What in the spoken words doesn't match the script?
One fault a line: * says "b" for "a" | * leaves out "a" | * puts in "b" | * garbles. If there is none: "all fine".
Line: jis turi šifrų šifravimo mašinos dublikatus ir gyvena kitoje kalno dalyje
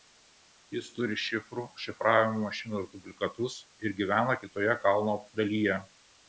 all fine